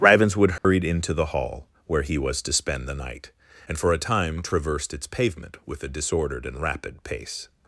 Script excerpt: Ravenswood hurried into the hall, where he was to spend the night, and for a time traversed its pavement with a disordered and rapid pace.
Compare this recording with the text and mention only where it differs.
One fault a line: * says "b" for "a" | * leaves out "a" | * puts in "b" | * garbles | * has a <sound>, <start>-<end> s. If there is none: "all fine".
* has a dropout, 0.6-0.6 s